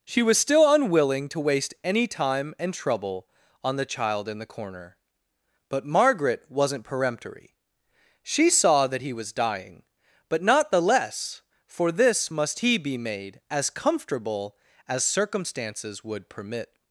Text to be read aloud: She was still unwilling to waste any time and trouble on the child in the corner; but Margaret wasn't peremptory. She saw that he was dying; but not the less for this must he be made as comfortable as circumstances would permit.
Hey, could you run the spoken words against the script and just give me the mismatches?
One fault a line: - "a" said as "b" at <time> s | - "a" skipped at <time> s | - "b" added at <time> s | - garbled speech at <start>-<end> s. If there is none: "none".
none